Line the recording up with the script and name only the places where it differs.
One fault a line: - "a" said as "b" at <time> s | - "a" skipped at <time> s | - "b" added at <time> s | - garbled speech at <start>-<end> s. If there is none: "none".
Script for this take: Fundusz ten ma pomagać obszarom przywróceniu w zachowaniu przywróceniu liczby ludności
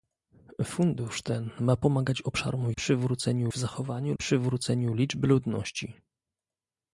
none